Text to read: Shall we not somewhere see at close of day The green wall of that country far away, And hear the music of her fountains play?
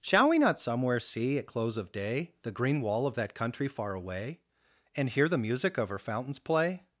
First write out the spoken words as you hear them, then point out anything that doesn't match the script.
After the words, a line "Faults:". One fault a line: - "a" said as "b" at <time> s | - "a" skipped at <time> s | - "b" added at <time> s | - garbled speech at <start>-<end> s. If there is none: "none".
Shall we not somewhere see at close of day The green wall of that country far away, And hear the music of her fountains play?
Faults:
none